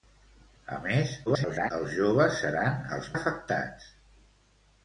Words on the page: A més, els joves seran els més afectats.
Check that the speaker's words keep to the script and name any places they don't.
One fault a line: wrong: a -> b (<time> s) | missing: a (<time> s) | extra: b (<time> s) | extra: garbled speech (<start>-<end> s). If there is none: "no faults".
extra: garbled speech (1.3-1.7 s)
missing: més (3.1 s)